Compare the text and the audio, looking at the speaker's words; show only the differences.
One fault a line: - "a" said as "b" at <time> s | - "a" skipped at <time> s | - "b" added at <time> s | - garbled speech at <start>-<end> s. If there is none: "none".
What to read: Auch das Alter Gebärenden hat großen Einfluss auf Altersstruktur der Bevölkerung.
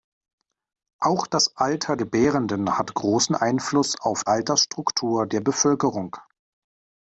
none